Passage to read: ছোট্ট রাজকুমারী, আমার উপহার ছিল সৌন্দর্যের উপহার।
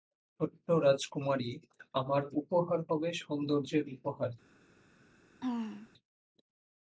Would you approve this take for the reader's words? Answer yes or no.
no